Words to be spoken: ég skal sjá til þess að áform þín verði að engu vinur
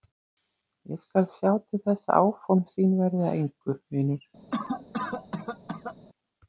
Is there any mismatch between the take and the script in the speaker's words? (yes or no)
no